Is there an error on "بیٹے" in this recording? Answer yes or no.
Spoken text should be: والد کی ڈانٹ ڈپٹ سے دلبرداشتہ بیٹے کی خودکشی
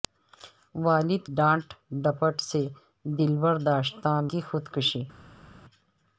yes